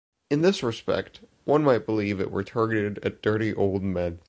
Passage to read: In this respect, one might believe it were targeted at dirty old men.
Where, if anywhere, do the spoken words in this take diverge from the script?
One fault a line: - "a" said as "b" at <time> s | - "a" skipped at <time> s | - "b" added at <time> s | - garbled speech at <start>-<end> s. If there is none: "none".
none